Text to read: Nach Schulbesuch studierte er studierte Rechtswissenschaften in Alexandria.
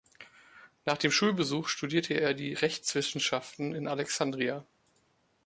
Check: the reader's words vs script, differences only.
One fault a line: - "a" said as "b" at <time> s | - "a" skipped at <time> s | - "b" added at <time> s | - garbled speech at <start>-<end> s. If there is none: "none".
- "dem" added at 1.0 s
- "studierte" said as "die" at 2.3 s